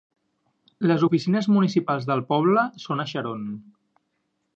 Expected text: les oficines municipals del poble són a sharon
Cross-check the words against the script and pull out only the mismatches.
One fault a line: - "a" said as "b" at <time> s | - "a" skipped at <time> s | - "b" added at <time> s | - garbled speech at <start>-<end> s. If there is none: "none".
none